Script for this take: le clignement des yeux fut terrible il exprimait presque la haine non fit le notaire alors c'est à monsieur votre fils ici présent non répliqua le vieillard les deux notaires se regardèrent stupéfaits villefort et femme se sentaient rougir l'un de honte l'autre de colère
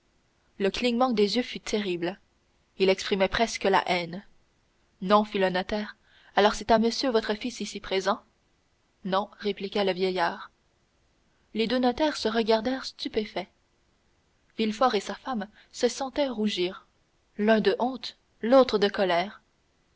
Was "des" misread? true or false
false